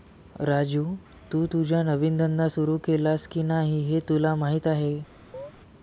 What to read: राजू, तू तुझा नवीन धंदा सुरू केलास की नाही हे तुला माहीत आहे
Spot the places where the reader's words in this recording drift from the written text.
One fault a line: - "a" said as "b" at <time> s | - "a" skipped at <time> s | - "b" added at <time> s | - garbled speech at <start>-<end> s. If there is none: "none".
none